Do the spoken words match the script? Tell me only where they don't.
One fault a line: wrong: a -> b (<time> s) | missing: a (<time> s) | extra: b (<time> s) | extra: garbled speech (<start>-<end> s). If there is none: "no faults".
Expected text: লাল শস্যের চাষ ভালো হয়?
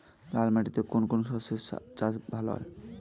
extra: মাটিতে কোন কোন (0.5 s)